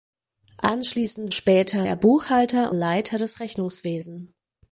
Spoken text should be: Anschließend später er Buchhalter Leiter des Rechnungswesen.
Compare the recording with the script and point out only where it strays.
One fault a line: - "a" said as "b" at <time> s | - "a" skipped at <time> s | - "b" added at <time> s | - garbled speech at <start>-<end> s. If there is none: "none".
none